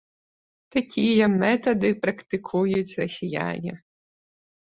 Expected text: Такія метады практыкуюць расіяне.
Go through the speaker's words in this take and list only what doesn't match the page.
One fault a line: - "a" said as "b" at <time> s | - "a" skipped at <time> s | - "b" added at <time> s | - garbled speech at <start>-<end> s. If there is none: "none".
none